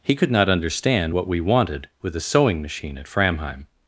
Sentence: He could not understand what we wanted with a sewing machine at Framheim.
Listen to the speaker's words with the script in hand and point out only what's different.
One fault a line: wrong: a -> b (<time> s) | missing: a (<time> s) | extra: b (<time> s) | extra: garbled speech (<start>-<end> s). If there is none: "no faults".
no faults